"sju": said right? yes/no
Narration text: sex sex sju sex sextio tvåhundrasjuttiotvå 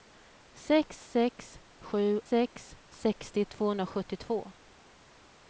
yes